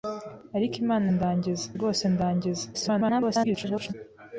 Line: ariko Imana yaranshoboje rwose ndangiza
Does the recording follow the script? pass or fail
fail